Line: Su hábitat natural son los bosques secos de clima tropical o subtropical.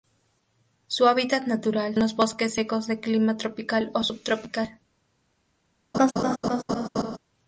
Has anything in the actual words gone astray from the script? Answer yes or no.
yes